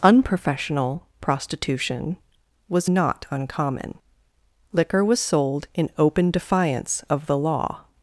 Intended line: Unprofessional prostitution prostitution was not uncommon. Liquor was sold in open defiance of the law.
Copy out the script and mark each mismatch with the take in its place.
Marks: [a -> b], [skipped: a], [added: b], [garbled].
Unprofessional prostitution [skipped: prostitution] was not uncommon. Liquor was sold in open defiance of the law.